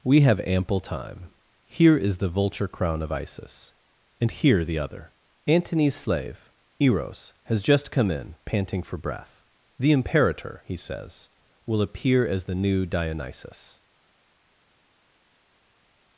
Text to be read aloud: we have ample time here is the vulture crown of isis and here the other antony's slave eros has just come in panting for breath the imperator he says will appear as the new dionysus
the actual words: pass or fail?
pass